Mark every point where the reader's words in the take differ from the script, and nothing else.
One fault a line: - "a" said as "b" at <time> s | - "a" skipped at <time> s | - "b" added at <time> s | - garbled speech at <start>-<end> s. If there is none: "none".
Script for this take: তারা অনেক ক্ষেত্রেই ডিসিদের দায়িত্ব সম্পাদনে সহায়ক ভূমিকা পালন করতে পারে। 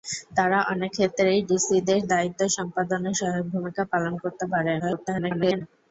- garbled speech at 4.8-5.6 s